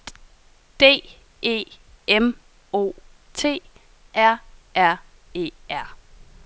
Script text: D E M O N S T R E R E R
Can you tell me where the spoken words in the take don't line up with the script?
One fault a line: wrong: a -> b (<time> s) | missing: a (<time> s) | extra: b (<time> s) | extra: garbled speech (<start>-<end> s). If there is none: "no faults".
missing: N S (3.0 s)
missing: E (4.4 s)